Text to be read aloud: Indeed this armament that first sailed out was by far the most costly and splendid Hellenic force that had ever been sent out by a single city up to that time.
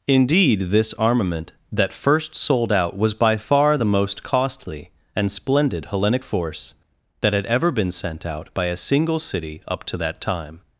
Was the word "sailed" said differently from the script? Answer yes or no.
yes